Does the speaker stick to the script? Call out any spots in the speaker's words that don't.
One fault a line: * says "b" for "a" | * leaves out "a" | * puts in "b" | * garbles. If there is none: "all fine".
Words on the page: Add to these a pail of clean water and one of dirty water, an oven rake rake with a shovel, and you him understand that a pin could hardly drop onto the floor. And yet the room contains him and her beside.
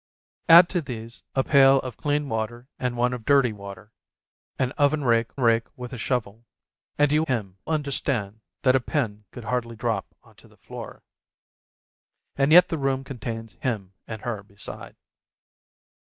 all fine